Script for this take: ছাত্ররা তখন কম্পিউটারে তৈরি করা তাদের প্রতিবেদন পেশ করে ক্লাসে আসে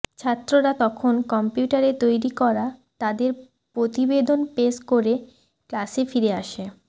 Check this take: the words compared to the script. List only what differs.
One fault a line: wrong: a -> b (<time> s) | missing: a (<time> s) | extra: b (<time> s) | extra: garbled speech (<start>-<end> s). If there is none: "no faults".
extra: ফিরে (6.1 s)